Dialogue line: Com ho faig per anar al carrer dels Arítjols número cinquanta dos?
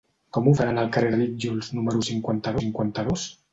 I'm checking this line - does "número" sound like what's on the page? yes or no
yes